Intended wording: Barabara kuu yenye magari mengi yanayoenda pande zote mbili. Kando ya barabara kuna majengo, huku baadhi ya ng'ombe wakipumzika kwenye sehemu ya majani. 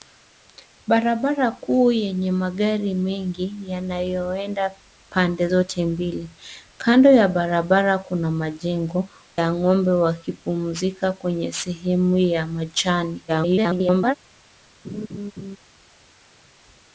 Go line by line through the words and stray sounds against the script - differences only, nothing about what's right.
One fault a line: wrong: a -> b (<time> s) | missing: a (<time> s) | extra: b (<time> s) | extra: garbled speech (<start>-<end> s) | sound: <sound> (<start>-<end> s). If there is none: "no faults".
missing: huku baadhi (9.1 s)
extra: garbled speech (13.3-14.2 s)
sound: laugh (14.8-15.6 s)